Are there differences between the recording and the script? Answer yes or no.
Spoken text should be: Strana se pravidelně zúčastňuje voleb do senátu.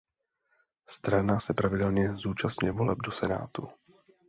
no